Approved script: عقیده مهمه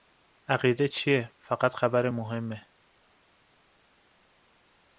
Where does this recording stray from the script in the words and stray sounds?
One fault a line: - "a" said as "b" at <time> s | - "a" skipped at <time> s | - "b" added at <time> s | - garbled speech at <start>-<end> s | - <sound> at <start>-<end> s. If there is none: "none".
- "چیه فقط خبر" added at 0.9 s